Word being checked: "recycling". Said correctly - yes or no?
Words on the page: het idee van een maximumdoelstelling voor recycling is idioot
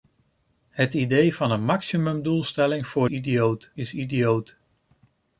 no